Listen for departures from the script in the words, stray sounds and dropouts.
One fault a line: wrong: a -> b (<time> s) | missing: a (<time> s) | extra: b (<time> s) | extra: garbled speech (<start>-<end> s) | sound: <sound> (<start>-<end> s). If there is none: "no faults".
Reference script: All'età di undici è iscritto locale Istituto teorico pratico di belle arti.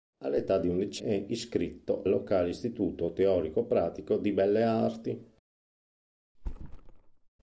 sound: thud (6.3-7.3 s)